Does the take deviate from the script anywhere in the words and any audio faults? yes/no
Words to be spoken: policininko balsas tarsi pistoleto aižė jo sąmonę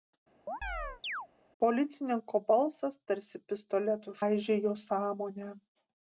yes